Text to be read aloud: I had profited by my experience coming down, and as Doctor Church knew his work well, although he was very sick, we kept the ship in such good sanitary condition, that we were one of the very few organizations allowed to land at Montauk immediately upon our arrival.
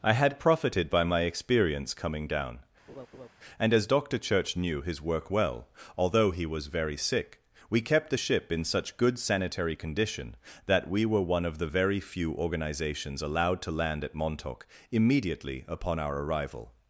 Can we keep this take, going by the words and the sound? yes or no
no